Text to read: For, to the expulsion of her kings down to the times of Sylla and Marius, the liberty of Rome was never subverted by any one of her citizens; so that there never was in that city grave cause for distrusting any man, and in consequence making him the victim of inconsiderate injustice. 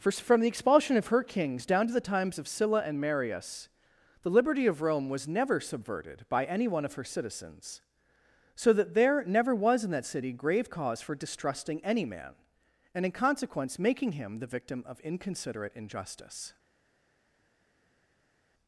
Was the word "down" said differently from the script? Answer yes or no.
no